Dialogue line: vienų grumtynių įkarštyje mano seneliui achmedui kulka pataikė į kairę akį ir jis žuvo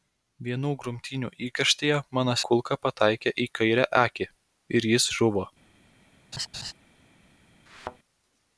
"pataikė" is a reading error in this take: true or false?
false